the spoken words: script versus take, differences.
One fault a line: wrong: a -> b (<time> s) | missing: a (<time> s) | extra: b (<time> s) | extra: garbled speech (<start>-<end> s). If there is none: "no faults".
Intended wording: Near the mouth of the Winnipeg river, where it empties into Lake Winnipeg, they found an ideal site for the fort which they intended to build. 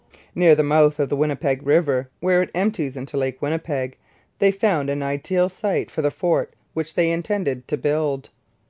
no faults